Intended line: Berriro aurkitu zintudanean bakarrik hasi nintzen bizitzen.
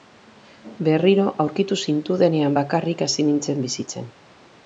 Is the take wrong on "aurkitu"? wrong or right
right